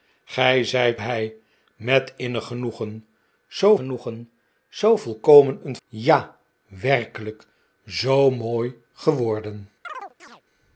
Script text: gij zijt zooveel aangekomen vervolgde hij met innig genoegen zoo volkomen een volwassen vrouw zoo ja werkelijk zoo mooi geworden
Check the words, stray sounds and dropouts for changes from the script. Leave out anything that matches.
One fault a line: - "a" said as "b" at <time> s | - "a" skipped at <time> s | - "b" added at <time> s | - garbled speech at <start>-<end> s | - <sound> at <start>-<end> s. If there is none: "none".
- "zooveel aangekomen vervolgde" skipped at 1.0 s
- "genoegen zoo" added at 3.7 s
- "volwassen vrouw zoo" skipped at 5.8 s
- chirp at 9.8-10.4 s